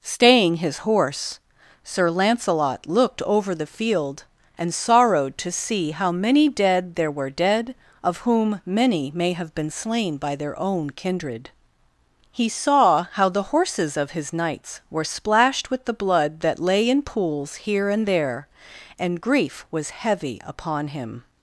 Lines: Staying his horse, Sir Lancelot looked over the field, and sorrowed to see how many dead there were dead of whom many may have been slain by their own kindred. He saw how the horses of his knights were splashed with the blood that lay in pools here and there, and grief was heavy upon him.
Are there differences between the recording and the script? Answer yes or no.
no